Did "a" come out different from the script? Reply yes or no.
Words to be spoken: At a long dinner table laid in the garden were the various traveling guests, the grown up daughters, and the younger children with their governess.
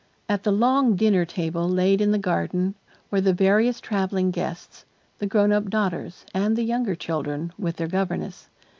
yes